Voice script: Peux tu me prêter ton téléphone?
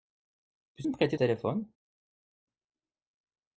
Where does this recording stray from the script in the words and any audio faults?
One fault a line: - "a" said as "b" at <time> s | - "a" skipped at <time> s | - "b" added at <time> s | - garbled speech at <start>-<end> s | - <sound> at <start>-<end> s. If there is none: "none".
- "tu" skipped at 0.8 s
- "ton" skipped at 1.2 s